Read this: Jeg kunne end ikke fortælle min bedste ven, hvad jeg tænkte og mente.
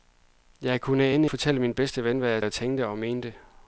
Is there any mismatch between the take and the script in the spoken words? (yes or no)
yes